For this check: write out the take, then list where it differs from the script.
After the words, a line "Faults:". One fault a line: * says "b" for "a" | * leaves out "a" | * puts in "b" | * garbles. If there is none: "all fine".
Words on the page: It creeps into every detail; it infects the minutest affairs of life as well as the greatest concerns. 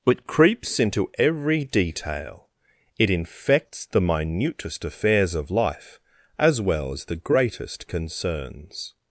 It creeps into every detail; it infects the minutest affairs of life as well as the greatest concerns.
Faults:
all fine